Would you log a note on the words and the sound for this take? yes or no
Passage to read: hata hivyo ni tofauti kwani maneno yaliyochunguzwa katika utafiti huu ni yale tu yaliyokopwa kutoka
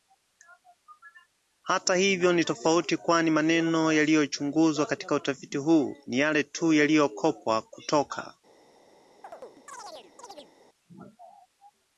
yes